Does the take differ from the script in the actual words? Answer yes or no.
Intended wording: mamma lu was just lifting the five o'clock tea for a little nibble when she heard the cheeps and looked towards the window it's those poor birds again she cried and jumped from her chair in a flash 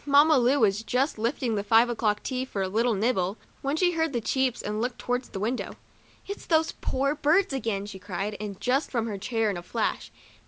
yes